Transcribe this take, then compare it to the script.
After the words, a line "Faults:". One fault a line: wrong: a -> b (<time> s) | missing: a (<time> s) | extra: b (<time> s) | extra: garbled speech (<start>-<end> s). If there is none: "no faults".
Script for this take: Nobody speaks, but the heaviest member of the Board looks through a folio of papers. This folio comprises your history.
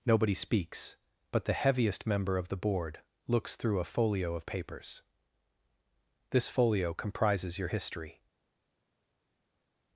Nobody speaks, but the heaviest member of the Board looks through a folio of papers. This folio comprises your history.
Faults:
no faults